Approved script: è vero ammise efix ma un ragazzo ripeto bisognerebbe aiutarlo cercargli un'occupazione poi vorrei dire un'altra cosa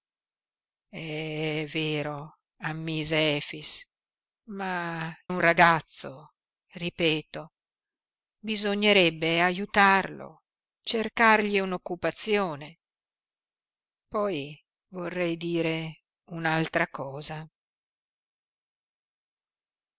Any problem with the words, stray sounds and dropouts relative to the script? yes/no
no